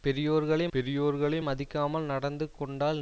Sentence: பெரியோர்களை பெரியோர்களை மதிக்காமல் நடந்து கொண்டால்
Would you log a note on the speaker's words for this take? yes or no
no